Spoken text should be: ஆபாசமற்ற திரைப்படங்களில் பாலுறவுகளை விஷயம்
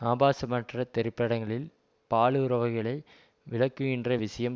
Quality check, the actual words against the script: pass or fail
fail